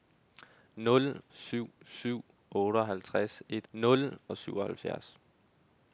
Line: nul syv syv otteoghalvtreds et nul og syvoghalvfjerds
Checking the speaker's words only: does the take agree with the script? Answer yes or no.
yes